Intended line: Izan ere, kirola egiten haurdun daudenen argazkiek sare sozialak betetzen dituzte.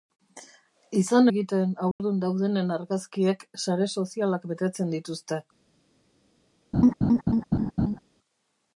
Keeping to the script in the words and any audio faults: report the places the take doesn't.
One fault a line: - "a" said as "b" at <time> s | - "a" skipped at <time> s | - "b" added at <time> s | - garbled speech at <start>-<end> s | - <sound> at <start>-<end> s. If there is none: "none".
- "ere kirola" skipped at 1.3 s
- dropout at 1.9-2.0 s
- laugh at 6.7-8.0 s